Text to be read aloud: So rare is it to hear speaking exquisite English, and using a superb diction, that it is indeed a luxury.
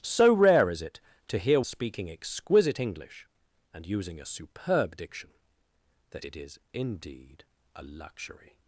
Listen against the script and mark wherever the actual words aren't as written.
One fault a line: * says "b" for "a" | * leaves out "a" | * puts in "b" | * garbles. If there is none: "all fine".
all fine